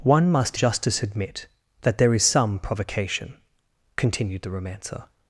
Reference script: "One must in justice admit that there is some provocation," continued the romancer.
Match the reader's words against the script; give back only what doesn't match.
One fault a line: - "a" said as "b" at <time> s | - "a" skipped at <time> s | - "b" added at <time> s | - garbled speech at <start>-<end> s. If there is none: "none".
- "in" skipped at 0.6 s